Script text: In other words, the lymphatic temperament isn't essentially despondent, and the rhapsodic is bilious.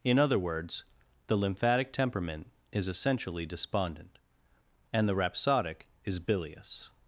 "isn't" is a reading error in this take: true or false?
true